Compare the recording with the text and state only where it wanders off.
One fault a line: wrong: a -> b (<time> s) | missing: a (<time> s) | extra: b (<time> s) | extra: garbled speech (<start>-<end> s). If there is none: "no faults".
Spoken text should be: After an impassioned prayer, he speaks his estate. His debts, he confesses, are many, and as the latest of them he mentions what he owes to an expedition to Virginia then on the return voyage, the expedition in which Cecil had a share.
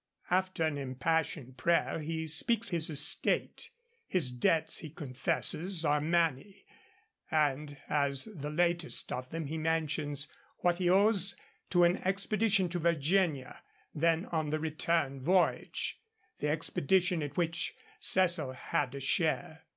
no faults